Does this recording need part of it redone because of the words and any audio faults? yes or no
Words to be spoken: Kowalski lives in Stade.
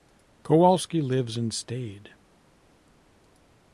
no